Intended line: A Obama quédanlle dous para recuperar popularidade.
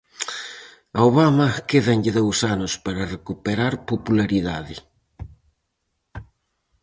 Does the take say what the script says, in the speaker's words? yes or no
no